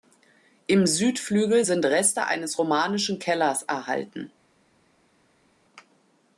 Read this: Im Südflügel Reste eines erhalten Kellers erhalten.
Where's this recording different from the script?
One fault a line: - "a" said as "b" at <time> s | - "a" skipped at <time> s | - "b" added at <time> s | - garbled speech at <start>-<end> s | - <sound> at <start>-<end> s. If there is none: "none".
- "sind" added at 1.6 s
- "erhalten" said as "romanischen" at 2.6 s